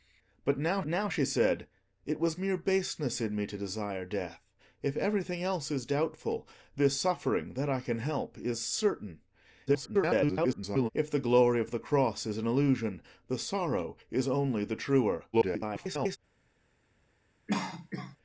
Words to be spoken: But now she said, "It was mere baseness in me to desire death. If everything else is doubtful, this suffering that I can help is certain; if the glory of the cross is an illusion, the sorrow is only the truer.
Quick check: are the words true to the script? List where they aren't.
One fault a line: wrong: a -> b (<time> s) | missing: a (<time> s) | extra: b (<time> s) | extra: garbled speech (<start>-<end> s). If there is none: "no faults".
extra: now (0.9 s)
extra: garbled speech (9.7-10.9 s)
extra: garbled speech (15.3-16.2 s)